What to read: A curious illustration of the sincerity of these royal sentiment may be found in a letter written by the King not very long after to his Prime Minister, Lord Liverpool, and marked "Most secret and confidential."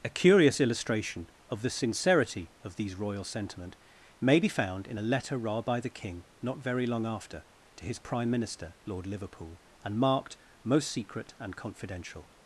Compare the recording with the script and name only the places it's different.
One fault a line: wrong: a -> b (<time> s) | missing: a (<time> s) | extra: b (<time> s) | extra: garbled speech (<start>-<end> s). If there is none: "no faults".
no faults